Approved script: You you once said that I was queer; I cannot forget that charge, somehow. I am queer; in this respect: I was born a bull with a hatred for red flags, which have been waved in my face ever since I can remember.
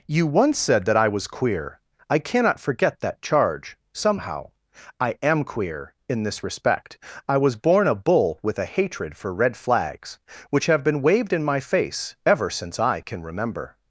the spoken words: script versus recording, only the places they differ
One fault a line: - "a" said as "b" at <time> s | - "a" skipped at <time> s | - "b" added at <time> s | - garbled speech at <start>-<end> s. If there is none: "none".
- "you" skipped at 0.2 s